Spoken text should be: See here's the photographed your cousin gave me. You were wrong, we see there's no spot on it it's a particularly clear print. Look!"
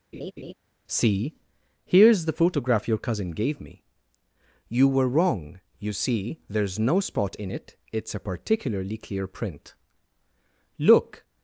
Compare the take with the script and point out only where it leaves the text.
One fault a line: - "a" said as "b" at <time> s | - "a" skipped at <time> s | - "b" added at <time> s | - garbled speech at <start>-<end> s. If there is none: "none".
- "photographed" said as "photograph" at 2.3 s
- "we" said as "you" at 5.8 s
- "on" said as "in" at 7.3 s